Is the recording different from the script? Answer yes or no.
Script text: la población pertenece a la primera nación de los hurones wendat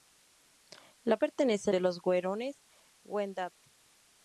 yes